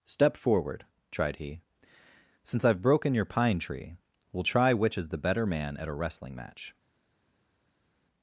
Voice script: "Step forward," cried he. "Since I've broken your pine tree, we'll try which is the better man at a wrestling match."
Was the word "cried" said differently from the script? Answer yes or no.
yes